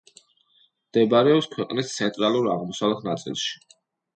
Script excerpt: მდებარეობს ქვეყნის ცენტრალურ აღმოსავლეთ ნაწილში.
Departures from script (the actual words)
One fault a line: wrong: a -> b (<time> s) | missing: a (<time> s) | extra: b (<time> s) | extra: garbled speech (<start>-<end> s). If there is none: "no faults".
no faults